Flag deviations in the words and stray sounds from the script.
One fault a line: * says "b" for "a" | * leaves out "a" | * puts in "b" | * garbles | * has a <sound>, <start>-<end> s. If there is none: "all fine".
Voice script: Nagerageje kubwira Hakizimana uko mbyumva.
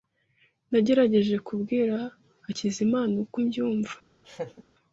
* has a laugh, 4.2-4.6 s